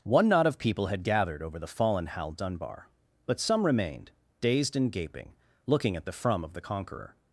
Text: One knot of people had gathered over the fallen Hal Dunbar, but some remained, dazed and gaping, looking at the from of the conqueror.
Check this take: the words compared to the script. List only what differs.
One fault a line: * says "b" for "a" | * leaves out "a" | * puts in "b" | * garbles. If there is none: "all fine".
all fine